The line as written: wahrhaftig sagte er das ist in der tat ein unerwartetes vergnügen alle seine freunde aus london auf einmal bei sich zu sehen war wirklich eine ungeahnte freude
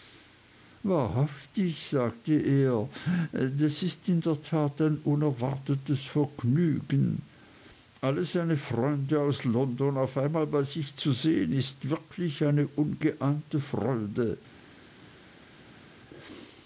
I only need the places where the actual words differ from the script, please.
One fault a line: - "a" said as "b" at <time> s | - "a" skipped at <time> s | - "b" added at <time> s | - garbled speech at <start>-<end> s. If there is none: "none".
- "war" said as "ist" at 11.5 s